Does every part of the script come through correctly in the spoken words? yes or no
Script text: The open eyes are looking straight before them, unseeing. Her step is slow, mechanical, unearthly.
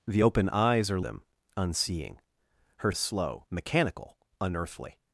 no